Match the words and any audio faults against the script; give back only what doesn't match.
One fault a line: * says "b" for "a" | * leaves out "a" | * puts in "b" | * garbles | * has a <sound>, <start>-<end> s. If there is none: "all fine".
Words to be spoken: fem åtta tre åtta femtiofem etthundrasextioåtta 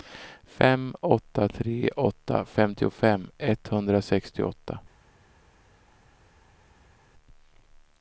all fine